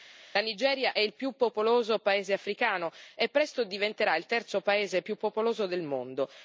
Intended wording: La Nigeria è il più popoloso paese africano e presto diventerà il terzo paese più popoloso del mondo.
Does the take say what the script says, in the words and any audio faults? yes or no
yes